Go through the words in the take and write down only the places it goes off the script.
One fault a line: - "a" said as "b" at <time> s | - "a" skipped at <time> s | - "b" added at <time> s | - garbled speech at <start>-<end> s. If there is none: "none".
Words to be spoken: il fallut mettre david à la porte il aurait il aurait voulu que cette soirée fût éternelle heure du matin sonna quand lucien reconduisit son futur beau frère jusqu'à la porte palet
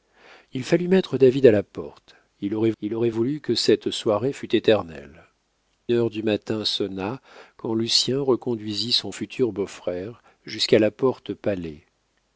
none